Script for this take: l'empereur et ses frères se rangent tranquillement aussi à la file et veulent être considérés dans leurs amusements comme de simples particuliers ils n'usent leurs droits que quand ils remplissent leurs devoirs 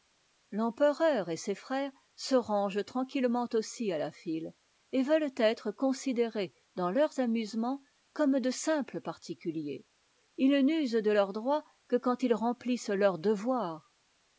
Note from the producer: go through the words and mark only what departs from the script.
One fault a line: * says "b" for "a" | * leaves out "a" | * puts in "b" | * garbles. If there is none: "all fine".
* puts in "de"